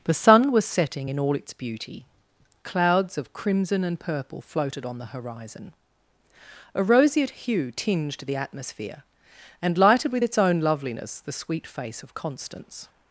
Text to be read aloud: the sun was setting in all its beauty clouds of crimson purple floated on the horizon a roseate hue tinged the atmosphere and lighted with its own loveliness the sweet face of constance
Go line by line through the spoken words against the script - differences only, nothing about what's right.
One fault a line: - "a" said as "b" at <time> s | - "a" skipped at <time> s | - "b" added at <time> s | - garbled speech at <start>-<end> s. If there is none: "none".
- "and" added at 3.8 s